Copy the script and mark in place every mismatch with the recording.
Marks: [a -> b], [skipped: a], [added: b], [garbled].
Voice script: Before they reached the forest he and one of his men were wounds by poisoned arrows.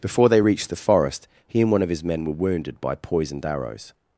Before they reached the forest he and one of his men were [wounds -> wounded] by poisoned arrows.